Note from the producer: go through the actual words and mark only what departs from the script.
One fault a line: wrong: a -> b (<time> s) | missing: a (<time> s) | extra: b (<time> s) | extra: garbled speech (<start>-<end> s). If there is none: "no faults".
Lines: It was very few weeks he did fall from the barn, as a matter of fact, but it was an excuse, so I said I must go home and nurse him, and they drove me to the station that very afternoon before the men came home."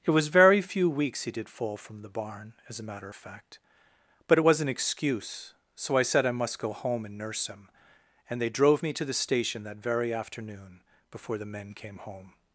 no faults